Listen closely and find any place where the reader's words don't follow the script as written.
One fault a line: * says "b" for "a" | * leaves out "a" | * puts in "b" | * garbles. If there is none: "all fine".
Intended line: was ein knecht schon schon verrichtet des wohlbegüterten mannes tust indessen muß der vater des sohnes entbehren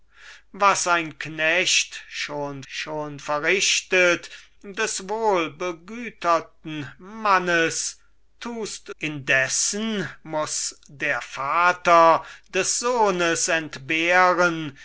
all fine